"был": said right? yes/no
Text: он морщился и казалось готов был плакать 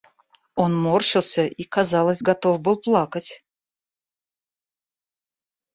yes